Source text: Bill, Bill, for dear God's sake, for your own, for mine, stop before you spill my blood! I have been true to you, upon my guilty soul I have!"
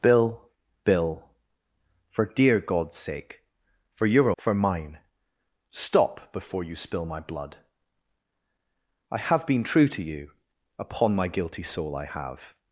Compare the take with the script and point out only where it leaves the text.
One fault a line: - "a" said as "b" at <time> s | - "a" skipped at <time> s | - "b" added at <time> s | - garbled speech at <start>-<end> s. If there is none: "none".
- "own" skipped at 4.3 s